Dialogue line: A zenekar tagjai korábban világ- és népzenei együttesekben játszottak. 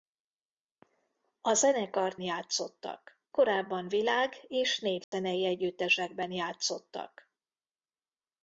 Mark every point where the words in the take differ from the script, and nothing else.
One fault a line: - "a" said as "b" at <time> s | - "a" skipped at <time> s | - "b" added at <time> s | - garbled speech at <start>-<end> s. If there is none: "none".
- "tagjai" said as "játszottak" at 2.2 s